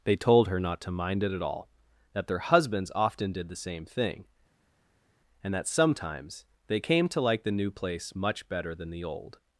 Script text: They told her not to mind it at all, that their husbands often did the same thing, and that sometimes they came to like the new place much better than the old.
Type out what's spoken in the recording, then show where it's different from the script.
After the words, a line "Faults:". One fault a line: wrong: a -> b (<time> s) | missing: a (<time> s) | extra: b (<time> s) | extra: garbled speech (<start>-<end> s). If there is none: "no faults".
They told her not to mind it at all, that their husbands often did the same thing, and that sometimes they came to like the new place much better than the old.
Faults:
no faults